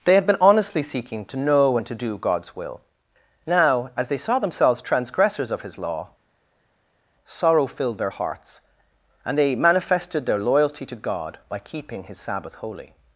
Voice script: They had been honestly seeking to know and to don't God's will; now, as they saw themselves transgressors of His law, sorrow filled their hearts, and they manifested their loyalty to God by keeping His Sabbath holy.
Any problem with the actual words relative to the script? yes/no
yes